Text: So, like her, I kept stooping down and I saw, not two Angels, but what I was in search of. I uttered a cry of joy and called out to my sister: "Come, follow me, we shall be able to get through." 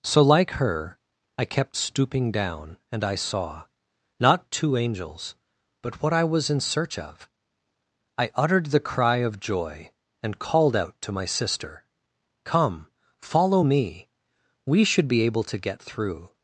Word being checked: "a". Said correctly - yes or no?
no